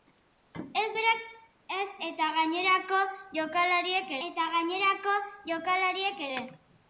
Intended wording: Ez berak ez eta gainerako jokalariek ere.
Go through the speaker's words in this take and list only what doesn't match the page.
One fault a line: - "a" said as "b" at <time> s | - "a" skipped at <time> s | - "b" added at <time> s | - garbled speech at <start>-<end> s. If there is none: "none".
- "eta gainerako jokalariek" added at 4.3 s